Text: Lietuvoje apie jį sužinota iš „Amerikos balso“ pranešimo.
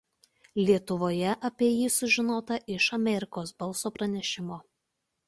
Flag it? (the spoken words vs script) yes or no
no